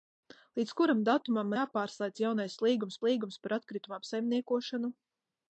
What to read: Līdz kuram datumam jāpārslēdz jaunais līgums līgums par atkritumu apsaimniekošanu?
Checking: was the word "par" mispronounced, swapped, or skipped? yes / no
no